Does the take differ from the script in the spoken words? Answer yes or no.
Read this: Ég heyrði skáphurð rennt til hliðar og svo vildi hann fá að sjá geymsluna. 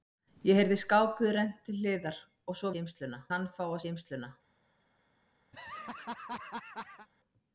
yes